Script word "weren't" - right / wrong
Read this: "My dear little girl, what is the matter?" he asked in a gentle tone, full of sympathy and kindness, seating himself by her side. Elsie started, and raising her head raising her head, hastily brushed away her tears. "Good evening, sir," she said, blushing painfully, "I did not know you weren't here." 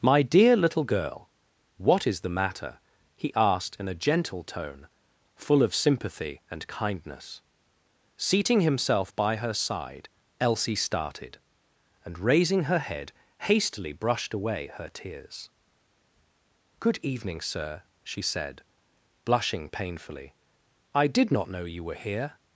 wrong